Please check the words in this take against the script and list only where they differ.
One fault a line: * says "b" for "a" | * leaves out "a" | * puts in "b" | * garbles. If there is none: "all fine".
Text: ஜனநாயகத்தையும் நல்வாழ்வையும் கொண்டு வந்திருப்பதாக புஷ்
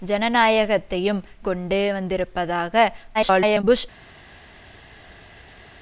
* leaves out "நல்வாழ்வையும்"
* garbles